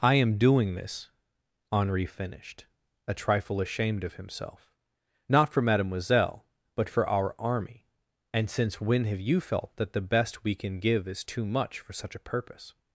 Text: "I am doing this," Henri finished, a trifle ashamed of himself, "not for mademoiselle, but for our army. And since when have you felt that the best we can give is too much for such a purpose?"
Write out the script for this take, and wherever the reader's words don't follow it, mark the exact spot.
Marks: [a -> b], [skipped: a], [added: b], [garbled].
"I am doing this," Henri finished, a trifle ashamed of himself, "not for mademoiselle, but for our army. And since when have you felt that the best we can give is too much for such a purpose?"